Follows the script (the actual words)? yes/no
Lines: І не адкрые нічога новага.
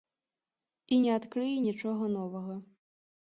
yes